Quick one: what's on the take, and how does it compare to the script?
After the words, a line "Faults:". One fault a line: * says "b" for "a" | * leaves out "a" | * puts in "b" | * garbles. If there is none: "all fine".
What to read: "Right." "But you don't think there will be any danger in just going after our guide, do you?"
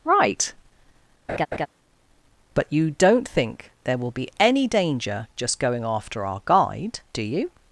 "Right." "But you don't think there will be any danger just going after our guide, do you?"
Faults:
* leaves out "in"